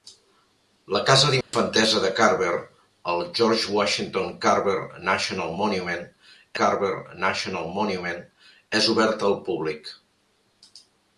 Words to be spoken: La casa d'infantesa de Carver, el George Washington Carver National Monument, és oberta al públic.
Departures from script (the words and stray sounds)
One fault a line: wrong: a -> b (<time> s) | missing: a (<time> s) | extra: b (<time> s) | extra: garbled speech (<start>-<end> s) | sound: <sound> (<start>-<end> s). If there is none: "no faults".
sound: dropout (1.4-1.5 s)
extra: Carver National Monument (6.6 s)